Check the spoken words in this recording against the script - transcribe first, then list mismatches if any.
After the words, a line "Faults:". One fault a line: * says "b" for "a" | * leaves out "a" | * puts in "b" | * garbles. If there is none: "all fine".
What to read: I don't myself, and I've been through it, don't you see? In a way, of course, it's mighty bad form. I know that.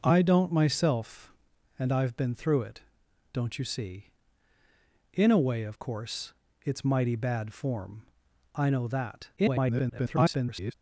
I don't myself, and I've been through it, don't you see? In a way, of course, it's mighty bad form. I know that. [garbled]
Faults:
* garbles